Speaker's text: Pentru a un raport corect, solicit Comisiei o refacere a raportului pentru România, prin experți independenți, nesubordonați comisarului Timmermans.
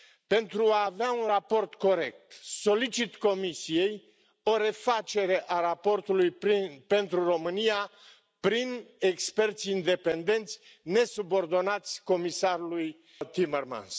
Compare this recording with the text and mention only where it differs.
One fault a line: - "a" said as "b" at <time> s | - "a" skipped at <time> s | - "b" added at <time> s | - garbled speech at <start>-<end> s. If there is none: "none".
- "avea" added at 0.8 s